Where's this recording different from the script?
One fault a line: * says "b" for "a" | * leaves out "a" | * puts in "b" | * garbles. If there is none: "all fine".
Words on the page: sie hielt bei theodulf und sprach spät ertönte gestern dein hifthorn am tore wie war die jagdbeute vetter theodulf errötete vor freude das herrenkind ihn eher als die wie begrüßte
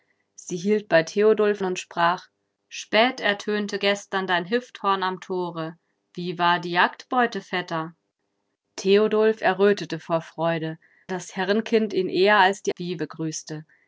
all fine